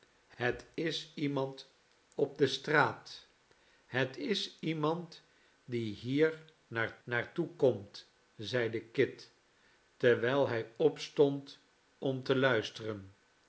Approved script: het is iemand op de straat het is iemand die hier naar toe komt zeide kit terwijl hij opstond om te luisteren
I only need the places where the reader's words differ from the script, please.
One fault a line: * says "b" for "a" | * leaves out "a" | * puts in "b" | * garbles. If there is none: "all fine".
* puts in "naar"